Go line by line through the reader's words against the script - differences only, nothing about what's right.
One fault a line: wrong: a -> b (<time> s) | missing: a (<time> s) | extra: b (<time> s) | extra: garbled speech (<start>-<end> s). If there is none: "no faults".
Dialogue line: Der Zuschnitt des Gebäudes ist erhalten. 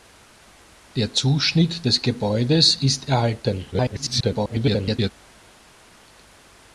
extra: garbled speech (3.7-5.1 s)